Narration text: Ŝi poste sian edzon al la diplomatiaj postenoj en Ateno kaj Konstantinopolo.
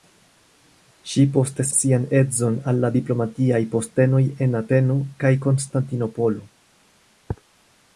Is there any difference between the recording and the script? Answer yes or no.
no